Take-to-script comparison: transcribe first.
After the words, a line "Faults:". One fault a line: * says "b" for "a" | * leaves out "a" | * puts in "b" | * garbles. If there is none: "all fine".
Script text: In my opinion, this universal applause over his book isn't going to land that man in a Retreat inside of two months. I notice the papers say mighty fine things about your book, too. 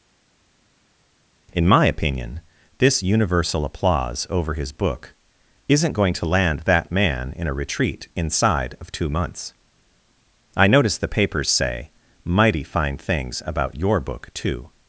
In my opinion, this universal applause over his book isn't going to land that man in a Retreat inside of two months. I notice the papers say mighty fine things about your book, too.
Faults:
all fine